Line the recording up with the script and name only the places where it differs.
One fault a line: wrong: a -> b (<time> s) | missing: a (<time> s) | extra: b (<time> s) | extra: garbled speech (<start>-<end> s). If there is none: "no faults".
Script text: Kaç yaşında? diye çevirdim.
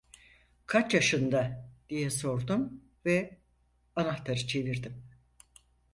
extra: sordum ve anahtarı (2.1 s)